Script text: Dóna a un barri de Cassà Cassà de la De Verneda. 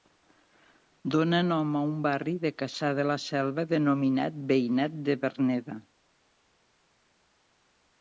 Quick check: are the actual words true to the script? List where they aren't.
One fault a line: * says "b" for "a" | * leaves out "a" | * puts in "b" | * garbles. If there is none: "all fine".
* puts in "nom"
* leaves out "Cassà"
* puts in "Selva denominat Veïnat"